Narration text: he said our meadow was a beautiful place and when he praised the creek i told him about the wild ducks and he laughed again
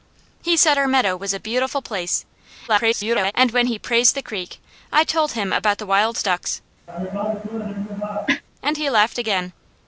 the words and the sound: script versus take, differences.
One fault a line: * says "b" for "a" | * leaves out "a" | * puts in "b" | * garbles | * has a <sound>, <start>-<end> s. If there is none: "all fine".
* garbles
* has a cough, 6.9-8.4 s